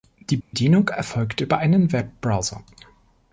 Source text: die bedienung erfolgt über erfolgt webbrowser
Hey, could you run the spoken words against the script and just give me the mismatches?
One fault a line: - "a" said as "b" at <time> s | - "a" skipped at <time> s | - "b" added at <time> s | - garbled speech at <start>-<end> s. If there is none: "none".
- "erfolgt" said as "einen" at 1.6 s